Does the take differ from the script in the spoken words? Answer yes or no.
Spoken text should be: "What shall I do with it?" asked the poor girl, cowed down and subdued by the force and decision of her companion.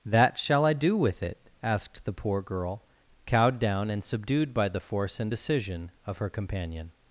yes